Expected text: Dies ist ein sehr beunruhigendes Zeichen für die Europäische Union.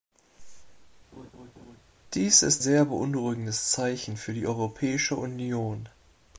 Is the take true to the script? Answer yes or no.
no